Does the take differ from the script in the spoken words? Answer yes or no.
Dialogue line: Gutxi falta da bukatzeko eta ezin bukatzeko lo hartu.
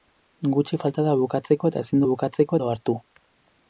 no